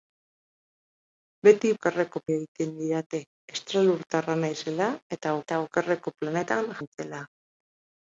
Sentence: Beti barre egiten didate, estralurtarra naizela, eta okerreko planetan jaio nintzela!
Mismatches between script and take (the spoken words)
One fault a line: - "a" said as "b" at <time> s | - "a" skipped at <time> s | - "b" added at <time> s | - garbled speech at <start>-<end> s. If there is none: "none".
- "barre" said as "okerreko" at 1.7 s
- "eta" added at 5.5 s
- "jaio" skipped at 6.7 s